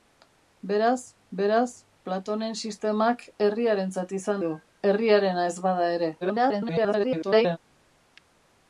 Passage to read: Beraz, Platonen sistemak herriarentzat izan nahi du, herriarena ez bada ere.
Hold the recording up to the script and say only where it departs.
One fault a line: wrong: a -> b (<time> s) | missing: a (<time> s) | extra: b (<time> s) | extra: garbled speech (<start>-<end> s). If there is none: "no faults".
extra: beraz (1.4 s)
missing: nahi (4.4 s)
extra: garbled speech (6.2-7.6 s)